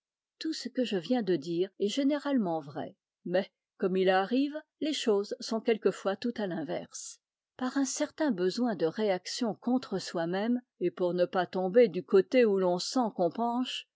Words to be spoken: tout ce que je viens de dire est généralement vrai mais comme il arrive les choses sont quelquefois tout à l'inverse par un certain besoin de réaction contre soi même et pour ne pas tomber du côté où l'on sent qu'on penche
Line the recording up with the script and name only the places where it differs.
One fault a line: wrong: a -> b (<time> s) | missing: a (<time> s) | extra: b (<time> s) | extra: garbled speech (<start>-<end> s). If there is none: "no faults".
no faults